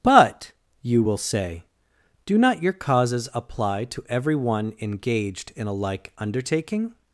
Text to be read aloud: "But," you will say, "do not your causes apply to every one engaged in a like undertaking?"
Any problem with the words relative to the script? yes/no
no